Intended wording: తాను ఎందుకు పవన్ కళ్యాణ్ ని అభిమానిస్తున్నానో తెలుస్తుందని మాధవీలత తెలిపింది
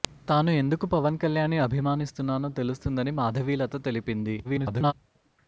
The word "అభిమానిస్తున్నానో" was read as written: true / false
true